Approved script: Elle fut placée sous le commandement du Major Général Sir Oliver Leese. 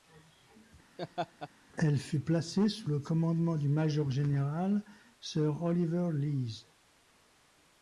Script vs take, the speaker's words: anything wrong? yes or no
no